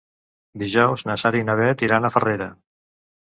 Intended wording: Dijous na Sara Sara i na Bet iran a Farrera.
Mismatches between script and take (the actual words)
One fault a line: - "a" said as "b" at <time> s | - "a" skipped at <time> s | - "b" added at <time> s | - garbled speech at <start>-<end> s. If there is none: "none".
- "Sara" skipped at 1.4 s